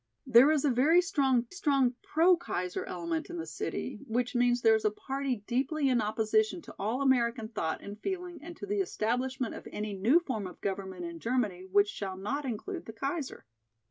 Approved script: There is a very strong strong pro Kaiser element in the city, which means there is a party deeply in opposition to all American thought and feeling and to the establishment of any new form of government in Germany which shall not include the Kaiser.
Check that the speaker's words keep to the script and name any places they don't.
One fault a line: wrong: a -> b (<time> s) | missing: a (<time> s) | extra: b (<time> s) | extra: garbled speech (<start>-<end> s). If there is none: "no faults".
no faults